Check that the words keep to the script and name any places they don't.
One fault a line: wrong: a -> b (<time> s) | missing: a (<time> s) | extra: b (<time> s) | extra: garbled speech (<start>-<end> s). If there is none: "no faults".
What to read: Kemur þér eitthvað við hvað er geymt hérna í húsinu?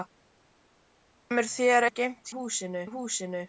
missing: eitthvað við hvað (1.9 s)
wrong: hérna -> húsinu (2.4 s)